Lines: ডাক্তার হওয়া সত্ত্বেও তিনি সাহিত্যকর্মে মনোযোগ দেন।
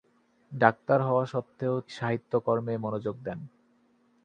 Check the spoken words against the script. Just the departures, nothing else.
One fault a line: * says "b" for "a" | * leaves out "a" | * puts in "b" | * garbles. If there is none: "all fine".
* leaves out "তিনি"